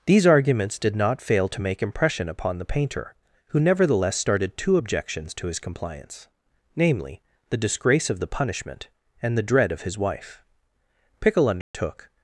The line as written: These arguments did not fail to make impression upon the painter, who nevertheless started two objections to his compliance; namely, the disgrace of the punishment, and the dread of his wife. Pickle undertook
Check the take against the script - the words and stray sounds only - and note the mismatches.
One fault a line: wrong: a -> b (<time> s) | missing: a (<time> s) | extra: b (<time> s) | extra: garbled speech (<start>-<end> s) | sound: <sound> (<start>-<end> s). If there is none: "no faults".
sound: dropout (11.6-11.7 s)